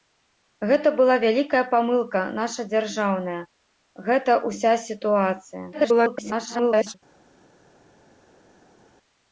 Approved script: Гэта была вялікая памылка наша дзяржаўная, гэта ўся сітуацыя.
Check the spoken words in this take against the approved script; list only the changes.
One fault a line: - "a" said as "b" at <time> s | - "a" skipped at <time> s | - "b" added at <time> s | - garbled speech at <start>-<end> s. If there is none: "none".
- garbled speech at 5.7-6.9 s